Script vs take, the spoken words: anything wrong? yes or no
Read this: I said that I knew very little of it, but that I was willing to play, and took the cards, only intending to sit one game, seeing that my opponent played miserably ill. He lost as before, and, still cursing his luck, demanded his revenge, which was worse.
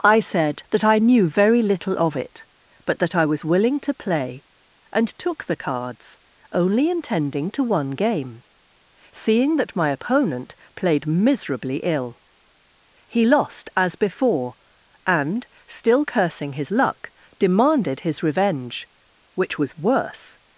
yes